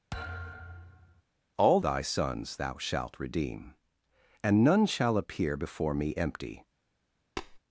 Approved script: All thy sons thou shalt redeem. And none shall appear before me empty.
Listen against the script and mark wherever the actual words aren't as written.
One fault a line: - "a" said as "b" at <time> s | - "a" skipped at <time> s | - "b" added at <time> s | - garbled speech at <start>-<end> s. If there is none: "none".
none